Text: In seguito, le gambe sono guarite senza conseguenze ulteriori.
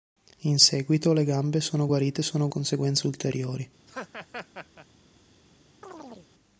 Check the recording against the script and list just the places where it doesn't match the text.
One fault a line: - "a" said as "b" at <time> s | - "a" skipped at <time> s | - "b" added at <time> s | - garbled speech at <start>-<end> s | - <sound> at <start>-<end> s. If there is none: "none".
- "senza" said as "sono" at 2.2 s
- laugh at 3.9-4.9 s
- chirp at 5.8-6.3 s